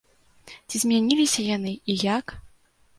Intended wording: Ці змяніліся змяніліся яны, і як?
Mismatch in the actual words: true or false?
true